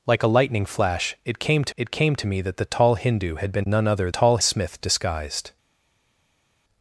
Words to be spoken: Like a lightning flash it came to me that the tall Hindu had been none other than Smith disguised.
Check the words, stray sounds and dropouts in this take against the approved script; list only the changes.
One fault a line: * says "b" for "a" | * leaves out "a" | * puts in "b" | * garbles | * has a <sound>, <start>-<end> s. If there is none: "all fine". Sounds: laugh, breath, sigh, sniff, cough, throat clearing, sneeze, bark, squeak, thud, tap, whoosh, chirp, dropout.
* puts in "it came to"
* says "tall" for "than"